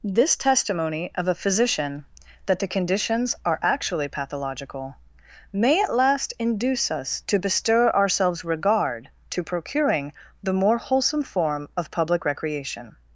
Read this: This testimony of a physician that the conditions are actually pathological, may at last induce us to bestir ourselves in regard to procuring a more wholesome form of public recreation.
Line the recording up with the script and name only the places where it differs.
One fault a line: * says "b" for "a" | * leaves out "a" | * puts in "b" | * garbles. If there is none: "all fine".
* leaves out "in"
* says "the" for "a"